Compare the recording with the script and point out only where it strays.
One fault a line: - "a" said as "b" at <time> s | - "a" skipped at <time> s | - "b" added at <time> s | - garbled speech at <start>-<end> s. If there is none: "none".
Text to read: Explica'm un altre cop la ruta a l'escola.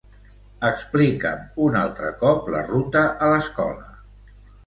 none